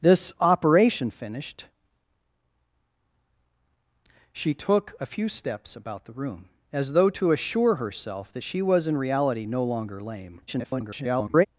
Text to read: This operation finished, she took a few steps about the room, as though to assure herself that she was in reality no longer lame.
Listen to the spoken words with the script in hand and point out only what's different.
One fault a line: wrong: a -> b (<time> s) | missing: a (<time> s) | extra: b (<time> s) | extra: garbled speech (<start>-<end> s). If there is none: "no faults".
extra: garbled speech (10.5-11.5 s)